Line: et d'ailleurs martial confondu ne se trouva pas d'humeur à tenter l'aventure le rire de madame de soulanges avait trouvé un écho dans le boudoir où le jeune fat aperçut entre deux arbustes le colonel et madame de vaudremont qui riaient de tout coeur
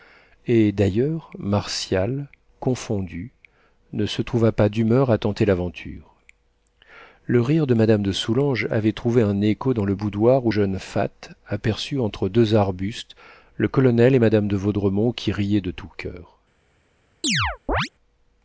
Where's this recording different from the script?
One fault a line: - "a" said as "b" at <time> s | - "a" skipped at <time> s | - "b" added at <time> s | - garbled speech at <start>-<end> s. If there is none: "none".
- "le" skipped at 10.5 s